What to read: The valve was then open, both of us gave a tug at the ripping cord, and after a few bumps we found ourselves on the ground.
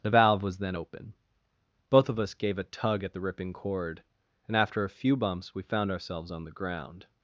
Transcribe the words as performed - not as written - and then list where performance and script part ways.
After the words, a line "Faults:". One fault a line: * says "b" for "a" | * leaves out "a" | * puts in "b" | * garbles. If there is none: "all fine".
The valve was then open, both of us gave a tug at the ripping cord, and after a few bumps we found ourselves on the ground.
Faults:
all fine